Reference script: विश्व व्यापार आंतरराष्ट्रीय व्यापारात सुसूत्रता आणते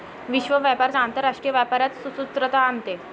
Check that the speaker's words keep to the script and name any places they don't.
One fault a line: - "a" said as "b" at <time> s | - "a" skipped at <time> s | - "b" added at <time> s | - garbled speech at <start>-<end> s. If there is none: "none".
none